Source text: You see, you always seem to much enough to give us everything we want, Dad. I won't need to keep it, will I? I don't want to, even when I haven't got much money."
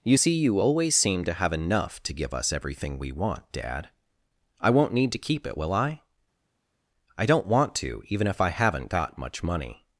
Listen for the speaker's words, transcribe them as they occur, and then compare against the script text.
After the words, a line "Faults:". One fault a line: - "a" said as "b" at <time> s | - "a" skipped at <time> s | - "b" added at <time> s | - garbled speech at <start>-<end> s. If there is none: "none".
You see, you always seem to have enough to give us everything we want, Dad. I won't need to keep it, will I? I don't want to, even if I haven't got much money."
Faults:
- "much" said as "have" at 1.3 s
- "when" said as "if" at 8.3 s